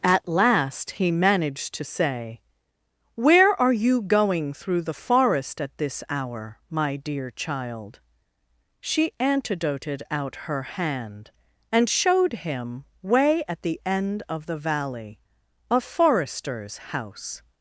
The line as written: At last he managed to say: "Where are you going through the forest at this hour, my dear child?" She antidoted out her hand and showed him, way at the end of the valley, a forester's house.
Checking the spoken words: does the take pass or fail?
pass